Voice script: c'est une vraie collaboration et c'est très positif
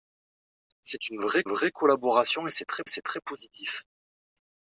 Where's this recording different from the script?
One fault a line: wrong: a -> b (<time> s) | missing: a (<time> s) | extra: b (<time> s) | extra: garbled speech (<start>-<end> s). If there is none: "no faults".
extra: vraie (1.5 s)
extra: c'est très (2.9 s)